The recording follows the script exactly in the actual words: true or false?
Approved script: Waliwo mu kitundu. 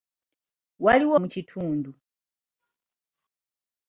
true